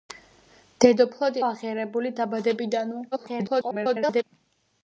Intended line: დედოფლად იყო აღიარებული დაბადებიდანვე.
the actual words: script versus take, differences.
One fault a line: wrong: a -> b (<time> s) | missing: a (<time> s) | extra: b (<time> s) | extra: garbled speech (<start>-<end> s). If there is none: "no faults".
missing: იყო (1.4 s)
extra: garbled speech (3.1-4.2 s)